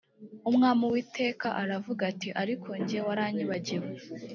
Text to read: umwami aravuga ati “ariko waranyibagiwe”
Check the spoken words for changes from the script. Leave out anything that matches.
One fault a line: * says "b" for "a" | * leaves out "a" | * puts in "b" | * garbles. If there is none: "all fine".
* puts in "uwiteka"
* puts in "jye"